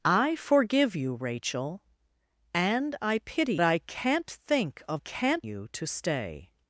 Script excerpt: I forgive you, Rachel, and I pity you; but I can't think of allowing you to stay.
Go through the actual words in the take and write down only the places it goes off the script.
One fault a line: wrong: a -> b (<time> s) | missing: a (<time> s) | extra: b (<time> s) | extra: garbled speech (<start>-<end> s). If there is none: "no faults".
missing: you but (3.5 s)
wrong: allowing -> can't (5.0 s)